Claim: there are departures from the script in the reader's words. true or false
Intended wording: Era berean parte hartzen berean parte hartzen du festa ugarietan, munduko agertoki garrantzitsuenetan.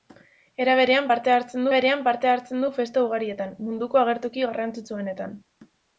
false